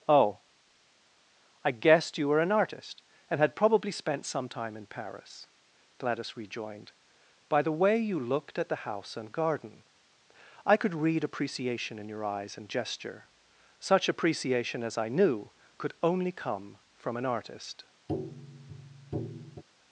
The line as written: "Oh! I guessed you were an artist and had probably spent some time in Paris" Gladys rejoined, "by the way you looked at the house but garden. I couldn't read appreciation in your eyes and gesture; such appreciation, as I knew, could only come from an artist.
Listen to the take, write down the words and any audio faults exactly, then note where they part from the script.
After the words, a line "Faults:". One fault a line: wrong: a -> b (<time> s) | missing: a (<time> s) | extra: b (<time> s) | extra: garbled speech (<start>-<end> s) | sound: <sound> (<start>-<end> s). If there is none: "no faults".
"Oh! I guessed you were an artist and had probably spent some time in Paris" Gladys rejoined, "by the way you looked at the house and garden. I could read appreciation in your eyes and gesture; such appreciation, as I knew, could only come from an artist.
Faults:
wrong: but -> and (9.2 s)
wrong: couldn't -> could (10.8 s)
sound: tap (18.1-19.6 s)